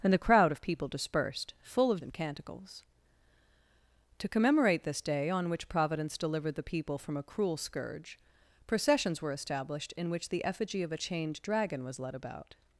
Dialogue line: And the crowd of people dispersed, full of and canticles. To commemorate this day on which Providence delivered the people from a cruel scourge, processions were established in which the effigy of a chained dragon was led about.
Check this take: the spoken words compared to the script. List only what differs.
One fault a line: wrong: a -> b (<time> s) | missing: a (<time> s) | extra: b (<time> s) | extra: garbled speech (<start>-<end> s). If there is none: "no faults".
no faults